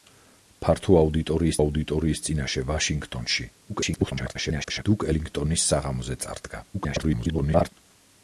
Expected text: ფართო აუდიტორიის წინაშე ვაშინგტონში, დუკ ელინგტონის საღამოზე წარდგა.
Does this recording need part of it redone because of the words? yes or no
yes